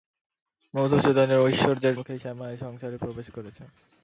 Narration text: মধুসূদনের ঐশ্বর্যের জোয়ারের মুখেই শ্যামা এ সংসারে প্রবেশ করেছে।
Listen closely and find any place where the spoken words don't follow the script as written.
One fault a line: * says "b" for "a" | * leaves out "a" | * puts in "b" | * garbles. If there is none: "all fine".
* leaves out "জোয়ারের"